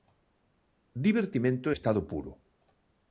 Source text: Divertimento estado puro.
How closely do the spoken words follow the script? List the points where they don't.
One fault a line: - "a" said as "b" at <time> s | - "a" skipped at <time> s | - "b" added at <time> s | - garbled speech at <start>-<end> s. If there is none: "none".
none